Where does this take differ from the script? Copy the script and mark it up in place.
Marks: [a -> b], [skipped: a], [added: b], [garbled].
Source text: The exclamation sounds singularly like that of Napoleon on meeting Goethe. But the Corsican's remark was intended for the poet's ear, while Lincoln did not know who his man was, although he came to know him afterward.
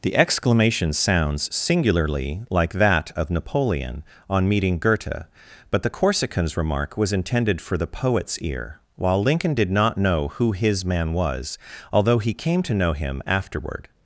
The exclamation sounds singularly like that of Napoleon on meeting Goethe. But the Corsican's remark was intended for the poet's ear, while Lincoln did not know who his man was, although he came to know him afterward.